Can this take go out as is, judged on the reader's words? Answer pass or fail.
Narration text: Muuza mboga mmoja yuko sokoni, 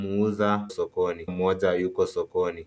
fail